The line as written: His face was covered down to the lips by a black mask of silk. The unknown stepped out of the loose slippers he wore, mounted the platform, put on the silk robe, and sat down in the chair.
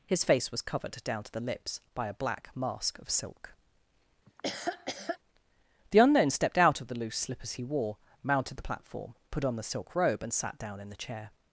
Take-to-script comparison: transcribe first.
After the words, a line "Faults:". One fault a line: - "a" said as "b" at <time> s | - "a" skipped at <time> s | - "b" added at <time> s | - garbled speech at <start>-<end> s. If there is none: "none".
His face was covered down to the lips by a black mask of silk. The unknown stepped out of the loose slippers he wore, mounted the platform, put on the silk robe, and sat down in the chair.
Faults:
none